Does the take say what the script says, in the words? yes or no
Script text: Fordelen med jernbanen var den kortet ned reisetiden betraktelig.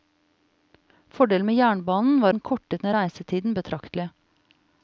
yes